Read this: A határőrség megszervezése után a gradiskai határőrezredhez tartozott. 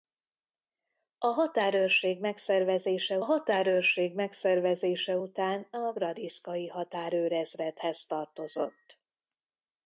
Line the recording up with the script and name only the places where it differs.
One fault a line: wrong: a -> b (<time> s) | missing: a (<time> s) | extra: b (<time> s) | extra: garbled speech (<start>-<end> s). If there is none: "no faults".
extra: határőrség megszervezése (3.2 s)